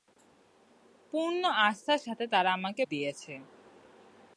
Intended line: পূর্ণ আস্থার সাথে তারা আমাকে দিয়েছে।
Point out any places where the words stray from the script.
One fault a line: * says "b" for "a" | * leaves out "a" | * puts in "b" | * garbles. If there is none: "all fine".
all fine